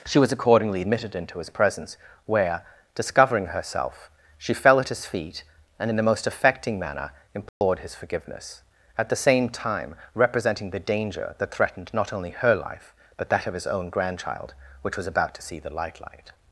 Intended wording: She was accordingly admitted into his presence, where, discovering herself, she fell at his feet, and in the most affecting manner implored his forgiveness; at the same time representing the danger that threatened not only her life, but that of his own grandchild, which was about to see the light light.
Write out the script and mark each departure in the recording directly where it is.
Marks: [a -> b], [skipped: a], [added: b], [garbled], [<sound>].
She was accordingly admitted into his presence, where, discovering herself, she fell at his feet, and in the most affecting manner implored [dropout] his forgiveness; at the same time representing the danger that threatened not only her life, but that of his own grandchild, which was about to see the light light.